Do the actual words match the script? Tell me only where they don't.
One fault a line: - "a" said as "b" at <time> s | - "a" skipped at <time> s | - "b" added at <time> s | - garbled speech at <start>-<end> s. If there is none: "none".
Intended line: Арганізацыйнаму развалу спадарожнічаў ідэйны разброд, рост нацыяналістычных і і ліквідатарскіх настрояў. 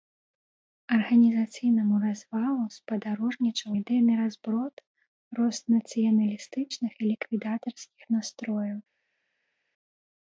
- "і" skipped at 7.1 s